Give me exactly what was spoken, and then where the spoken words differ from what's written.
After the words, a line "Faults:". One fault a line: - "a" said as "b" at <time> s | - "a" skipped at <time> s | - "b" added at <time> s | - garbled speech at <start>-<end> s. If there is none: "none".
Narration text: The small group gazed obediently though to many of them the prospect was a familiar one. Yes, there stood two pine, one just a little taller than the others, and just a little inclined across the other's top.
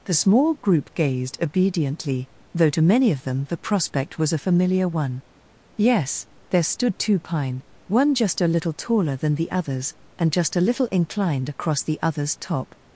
The small group gazed obediently though to many of them the prospect was a familiar one. Yes, there stood two pine, one just a little taller than the others, and just a little inclined across the other's top.
Faults:
none